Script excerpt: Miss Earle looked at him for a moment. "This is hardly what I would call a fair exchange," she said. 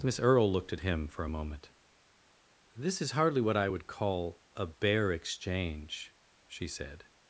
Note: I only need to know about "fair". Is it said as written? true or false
false